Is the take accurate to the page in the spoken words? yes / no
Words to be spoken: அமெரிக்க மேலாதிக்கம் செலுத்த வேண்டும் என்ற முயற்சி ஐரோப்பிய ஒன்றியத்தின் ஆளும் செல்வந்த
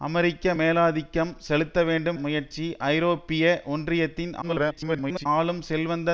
no